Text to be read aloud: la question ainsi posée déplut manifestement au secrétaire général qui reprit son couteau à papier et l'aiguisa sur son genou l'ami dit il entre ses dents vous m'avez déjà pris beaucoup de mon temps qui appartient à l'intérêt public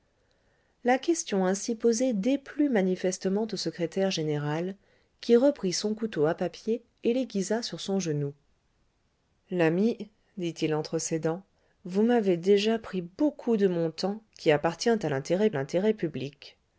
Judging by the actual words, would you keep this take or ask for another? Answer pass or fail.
fail